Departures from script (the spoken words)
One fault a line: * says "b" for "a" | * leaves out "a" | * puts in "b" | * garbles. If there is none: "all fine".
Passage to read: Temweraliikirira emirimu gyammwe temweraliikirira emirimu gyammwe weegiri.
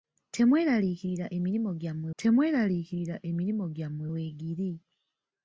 all fine